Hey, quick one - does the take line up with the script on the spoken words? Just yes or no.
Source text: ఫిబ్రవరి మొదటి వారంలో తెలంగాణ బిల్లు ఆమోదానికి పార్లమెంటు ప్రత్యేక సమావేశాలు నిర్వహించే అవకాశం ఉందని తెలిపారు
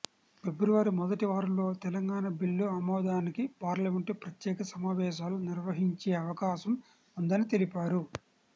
yes